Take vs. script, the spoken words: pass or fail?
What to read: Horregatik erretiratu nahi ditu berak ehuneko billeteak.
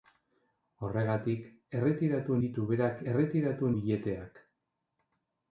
fail